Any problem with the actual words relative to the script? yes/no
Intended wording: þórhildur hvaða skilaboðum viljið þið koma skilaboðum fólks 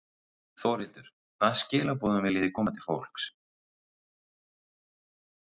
yes